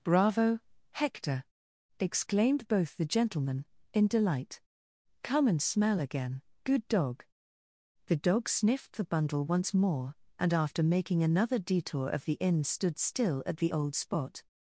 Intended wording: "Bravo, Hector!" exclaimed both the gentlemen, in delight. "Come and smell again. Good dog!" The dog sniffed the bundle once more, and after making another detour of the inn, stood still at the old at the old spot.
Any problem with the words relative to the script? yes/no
yes